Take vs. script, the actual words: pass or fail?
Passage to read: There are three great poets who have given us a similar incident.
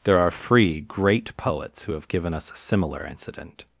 fail